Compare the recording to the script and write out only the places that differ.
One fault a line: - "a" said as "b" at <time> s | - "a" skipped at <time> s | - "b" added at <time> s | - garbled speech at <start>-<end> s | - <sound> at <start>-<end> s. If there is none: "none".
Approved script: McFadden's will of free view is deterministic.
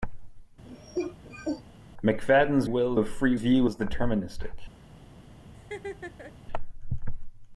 - cough at 0.6-1.6 s
- laugh at 5.5-6.4 s